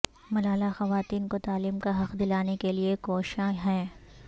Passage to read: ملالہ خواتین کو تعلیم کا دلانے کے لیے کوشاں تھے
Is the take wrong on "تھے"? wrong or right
wrong